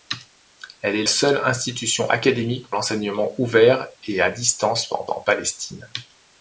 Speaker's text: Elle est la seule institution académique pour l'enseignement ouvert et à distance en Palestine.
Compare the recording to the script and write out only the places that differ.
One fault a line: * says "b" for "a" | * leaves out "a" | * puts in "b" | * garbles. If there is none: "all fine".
* leaves out "la"
* leaves out "pour"
* puts in "en"